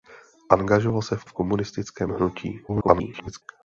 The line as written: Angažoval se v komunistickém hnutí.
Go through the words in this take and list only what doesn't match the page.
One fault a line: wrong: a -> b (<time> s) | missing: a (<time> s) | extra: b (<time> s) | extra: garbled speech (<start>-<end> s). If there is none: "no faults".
extra: v (1.2 s)
extra: garbled speech (2.7-3.4 s)